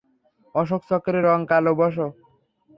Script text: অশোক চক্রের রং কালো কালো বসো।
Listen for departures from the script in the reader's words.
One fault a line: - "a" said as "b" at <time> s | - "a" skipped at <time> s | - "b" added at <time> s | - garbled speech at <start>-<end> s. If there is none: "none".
- "কালো" skipped at 1.7 s